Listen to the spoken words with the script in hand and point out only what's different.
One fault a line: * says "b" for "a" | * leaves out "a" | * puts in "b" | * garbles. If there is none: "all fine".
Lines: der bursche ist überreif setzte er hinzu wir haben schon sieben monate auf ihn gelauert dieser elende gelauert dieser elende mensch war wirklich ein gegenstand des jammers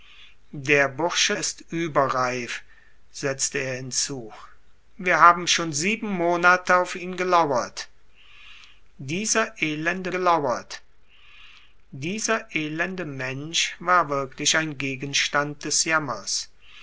all fine